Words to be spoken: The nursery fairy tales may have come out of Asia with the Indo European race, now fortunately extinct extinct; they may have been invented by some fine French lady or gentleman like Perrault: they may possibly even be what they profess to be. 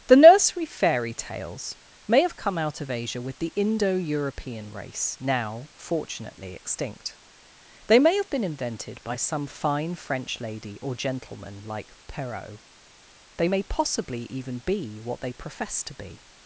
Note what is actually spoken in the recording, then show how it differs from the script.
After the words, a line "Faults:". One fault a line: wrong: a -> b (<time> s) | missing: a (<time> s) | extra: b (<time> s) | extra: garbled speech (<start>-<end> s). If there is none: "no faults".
The nursery fairy tales may have come out of Asia with the Indo European race, now fortunately extinct; they may have been invented by some fine French lady or gentleman like Perrault: they may possibly even be what they profess to be.
Faults:
missing: extinct (7.2 s)